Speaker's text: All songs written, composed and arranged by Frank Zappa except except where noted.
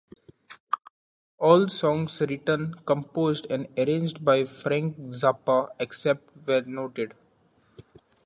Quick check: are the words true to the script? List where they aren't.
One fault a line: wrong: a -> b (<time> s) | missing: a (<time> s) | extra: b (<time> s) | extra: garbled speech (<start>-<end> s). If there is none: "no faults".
missing: except (6.3 s)